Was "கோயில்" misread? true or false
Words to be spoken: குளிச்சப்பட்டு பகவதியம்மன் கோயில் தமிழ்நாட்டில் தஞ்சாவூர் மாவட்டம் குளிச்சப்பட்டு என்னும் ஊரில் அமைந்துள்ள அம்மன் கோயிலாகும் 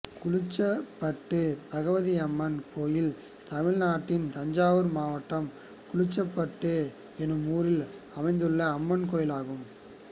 false